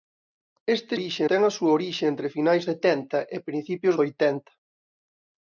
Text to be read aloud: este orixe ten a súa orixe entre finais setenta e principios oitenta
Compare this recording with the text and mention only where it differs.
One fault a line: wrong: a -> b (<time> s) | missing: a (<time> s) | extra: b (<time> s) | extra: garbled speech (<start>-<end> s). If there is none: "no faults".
no faults